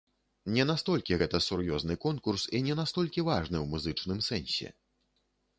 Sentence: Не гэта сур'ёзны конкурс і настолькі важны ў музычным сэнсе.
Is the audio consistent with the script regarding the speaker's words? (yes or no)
no